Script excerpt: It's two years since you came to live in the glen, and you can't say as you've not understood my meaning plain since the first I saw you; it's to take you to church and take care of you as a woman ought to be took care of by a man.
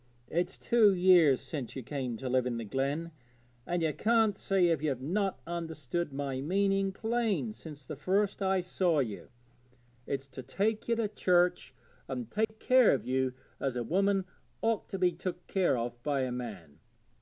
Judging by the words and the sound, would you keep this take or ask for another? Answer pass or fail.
fail